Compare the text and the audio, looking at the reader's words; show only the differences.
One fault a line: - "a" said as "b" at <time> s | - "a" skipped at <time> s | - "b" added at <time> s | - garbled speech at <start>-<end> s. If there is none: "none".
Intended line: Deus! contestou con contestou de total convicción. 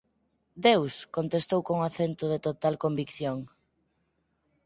- "contestou" said as "acento" at 1.9 s